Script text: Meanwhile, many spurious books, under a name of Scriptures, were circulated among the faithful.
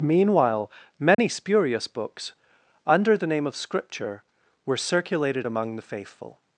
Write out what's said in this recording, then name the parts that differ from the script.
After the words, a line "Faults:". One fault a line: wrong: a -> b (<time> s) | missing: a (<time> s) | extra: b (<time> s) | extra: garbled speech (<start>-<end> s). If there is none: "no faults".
Meanwhile, many spurious books, under the name of Scripture, were circulated among the faithful.
Faults:
wrong: a -> the (3.1 s)
wrong: Scriptures -> Scripture (3.5 s)